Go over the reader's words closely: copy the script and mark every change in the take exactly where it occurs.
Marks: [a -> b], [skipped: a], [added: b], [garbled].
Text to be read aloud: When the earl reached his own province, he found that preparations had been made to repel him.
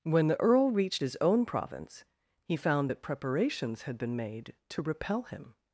When the earl reached his own province, he found that preparations had been made to repel him.